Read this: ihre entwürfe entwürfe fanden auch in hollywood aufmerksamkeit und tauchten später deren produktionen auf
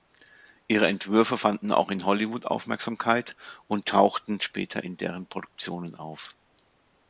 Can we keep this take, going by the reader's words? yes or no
no